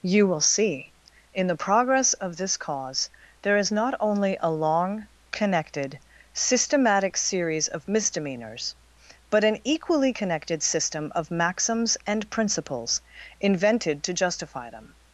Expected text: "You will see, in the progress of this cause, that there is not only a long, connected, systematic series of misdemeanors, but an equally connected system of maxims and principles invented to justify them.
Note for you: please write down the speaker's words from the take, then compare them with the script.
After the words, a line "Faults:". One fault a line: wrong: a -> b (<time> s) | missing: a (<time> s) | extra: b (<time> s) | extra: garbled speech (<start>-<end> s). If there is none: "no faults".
"You will see, in the progress of this cause, there is not only a long, connected, systematic series of misdemeanors, but an equally connected system of maxims and principles invented to justify them.
Faults:
missing: that (3.1 s)